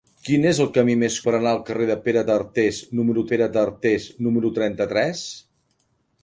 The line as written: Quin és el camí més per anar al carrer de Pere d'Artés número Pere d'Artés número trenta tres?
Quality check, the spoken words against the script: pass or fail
pass